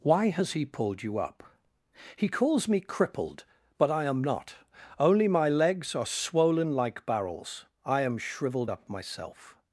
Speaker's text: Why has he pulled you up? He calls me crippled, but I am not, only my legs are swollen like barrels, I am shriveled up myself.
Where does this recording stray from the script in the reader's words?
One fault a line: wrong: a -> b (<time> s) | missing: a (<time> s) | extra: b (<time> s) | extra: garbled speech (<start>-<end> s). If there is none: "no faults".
no faults